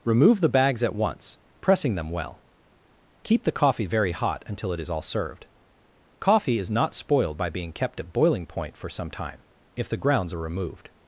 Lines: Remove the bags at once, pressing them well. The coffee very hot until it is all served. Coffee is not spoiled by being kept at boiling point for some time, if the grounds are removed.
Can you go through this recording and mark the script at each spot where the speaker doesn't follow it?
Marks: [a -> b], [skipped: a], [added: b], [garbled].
Remove the bags at once, pressing them well. [added: Keep] The coffee very hot until it is all served. Coffee is not spoiled by being kept at boiling point for some time, if the grounds are removed.